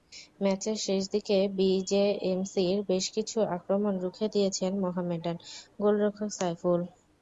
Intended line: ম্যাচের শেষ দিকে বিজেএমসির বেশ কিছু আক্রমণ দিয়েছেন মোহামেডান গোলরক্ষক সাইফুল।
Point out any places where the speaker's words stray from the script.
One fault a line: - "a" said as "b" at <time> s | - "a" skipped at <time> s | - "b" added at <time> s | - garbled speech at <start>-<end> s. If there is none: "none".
- "রুখে" added at 4.0 s